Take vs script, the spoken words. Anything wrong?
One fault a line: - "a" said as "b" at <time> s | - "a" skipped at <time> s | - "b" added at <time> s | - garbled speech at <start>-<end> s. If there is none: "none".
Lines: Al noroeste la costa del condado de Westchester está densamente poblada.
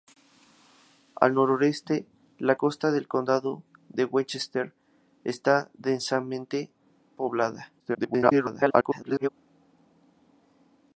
- garbled speech at 7.8-9.3 s